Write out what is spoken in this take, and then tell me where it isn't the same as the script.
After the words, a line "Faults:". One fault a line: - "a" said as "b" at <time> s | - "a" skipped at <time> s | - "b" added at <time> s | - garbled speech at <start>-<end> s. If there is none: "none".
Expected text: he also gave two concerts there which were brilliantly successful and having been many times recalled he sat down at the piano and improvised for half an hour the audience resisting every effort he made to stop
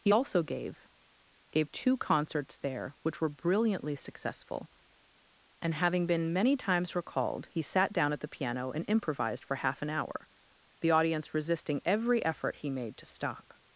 he also gave gave two concerts there which were brilliantly successful and having been many times recalled he sat down at the piano and improvised for half an hour the audience resisting every effort he made to stop
Faults:
- "gave" added at 1.5 s